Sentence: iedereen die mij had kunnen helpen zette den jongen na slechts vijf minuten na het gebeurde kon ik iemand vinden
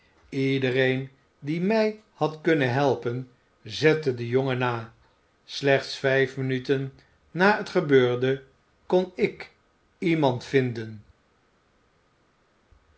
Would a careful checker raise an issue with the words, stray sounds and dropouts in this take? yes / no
no